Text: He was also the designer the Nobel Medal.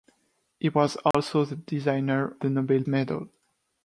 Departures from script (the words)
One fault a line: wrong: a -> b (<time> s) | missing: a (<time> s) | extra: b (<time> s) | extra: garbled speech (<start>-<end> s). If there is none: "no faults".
no faults